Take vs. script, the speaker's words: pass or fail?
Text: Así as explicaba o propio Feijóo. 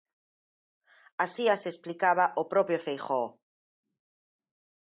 pass